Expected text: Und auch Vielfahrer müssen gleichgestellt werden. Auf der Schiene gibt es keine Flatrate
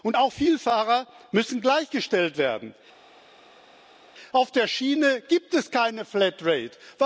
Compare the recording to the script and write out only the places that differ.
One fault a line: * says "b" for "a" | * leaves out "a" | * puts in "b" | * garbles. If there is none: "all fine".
all fine